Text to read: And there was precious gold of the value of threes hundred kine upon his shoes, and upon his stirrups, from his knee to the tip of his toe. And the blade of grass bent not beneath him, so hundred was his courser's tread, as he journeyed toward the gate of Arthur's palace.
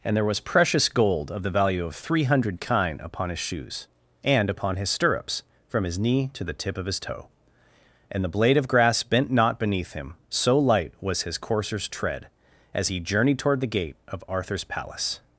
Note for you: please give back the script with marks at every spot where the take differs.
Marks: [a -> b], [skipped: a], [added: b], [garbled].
And there was precious gold of the value of [threes -> three] hundred kine upon his shoes, and upon his stirrups, from his knee to the tip of his toe. And the blade of grass bent not beneath him, so [hundred -> light] was his courser's tread, as he journeyed toward the gate of Arthur's palace.